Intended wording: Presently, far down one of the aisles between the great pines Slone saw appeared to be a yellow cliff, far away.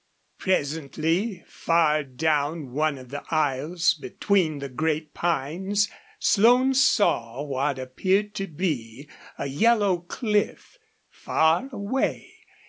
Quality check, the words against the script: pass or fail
fail